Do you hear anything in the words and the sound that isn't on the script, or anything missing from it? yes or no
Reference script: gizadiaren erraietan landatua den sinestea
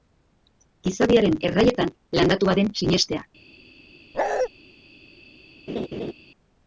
yes